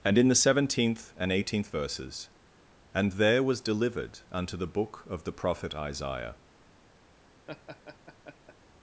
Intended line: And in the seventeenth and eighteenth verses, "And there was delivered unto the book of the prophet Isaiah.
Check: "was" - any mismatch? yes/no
no